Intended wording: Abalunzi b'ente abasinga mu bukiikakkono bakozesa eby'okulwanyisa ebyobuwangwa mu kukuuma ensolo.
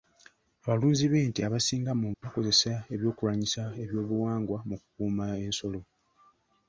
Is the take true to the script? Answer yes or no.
no